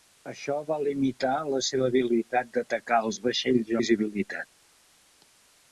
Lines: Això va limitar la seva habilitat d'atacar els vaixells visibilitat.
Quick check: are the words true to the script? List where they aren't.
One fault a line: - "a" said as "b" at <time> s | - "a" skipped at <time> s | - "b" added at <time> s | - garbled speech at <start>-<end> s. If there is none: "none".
none